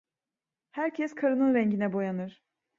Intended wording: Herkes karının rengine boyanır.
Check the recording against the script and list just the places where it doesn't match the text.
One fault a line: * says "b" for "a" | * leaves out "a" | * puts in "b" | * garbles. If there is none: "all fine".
all fine